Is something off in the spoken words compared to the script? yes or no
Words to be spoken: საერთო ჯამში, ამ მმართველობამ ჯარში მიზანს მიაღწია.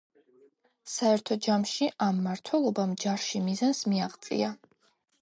no